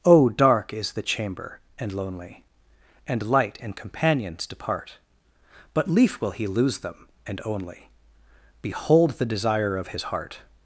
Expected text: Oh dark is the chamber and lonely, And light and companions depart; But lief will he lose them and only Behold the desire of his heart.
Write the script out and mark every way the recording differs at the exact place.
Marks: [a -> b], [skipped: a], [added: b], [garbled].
Oh dark is the chamber and lonely, And light and companions depart; But lief will he lose them and only Behold the desire of his heart.